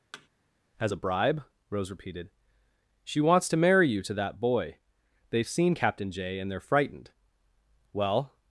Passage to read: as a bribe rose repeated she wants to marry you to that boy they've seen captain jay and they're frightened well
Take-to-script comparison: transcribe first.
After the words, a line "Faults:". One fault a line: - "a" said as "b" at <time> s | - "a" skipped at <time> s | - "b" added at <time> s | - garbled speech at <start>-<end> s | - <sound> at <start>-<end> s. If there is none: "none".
as a bribe rose repeated she wants to marry you to that boy they've seen captain jay and they're frightened well
Faults:
- thud at 0.1-0.3 s